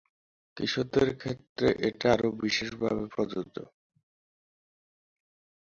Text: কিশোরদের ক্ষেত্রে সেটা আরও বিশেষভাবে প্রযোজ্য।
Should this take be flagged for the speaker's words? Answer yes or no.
yes